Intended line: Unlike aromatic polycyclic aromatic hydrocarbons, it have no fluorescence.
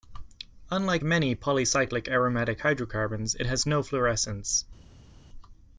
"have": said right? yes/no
no